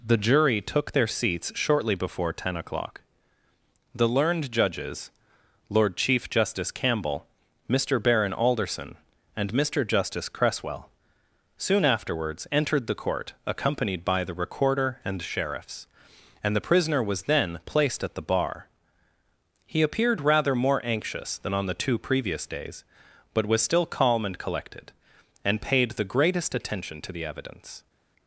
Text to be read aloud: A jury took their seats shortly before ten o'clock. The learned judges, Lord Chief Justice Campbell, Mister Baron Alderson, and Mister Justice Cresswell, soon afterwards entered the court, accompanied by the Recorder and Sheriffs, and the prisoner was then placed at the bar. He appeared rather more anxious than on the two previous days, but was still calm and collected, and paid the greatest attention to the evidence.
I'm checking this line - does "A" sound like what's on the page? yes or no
no